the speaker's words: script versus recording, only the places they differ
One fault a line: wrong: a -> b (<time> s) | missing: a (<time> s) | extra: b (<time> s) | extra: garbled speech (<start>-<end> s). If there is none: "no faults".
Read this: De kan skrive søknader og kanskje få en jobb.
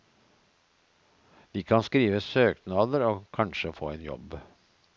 no faults